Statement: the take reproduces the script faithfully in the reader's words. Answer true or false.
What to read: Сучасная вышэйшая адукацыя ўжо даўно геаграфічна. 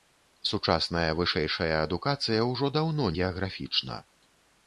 true